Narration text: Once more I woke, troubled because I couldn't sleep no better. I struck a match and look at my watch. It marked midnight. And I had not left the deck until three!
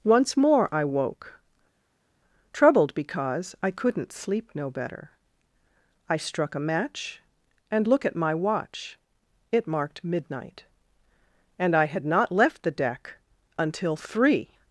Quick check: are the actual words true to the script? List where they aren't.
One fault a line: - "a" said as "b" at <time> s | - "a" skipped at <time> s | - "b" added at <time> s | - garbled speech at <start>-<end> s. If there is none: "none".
none